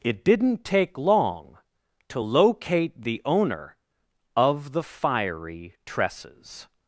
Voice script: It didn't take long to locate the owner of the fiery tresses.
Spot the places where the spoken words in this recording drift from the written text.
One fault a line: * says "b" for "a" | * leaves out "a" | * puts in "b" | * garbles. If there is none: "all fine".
all fine